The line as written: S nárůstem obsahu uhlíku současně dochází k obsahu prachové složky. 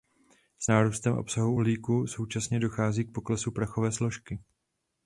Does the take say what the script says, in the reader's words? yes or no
no